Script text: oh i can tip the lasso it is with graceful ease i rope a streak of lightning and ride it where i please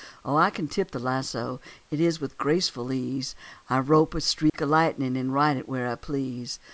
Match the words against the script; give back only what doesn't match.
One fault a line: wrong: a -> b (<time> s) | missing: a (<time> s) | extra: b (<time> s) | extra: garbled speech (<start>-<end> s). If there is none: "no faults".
no faults